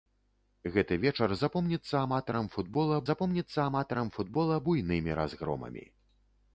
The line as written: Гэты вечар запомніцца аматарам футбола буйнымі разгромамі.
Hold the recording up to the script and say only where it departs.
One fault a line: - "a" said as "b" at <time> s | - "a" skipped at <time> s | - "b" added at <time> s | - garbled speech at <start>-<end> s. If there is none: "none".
- "запомніцца аматарам футбола" added at 3.1 s